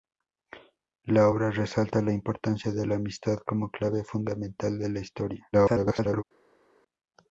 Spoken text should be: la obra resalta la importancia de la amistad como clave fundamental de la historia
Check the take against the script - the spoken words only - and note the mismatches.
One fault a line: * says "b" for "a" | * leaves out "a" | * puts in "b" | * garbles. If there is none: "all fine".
* garbles